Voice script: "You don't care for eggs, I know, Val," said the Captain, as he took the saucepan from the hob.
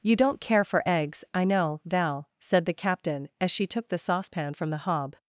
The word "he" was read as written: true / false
false